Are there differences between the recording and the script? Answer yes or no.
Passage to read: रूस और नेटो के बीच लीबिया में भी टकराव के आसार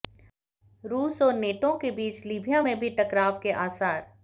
no